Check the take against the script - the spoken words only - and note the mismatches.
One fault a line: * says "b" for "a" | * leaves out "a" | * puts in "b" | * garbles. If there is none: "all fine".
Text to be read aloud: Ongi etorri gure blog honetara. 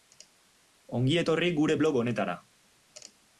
all fine